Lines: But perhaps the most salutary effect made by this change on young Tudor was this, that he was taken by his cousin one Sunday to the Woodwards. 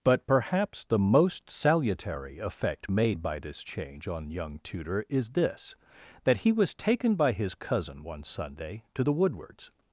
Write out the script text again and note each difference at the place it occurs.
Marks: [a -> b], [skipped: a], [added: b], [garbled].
But perhaps the most salutary effect made by this change on young Tudor [was -> is] this, that he was taken by his cousin one Sunday to the Woodwards.